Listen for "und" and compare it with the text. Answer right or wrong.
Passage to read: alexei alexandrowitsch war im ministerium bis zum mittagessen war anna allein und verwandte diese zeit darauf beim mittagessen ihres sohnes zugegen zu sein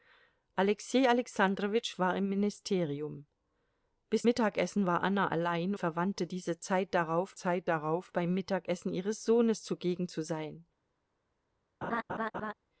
wrong